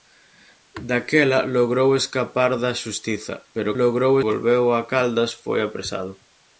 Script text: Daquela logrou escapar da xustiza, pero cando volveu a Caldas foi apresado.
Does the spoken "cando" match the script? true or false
false